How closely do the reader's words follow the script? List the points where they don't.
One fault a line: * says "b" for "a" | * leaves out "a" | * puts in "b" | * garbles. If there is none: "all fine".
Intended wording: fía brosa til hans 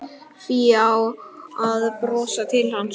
* puts in "að"